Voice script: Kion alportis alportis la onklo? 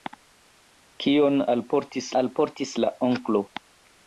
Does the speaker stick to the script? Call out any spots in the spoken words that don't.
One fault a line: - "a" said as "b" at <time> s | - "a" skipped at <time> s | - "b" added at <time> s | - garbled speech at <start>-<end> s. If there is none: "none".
none